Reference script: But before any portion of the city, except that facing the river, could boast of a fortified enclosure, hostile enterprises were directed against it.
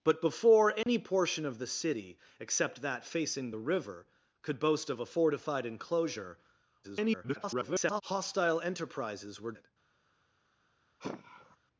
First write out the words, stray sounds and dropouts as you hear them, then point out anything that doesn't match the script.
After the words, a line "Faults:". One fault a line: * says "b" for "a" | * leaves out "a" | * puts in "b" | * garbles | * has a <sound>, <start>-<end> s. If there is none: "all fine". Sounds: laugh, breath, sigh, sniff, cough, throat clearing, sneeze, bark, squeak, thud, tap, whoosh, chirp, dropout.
But before any portion of the city, except that facing the river, could boast of a fortified enclosure, [garbled] hostile enterprises were it.
Faults:
* has a dropout, 0.8-0.9 s
* garbles
* leaves out "directed against"
* has a sigh, 11.0-11.6 s